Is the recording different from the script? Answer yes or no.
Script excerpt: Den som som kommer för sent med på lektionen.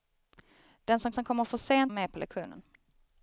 no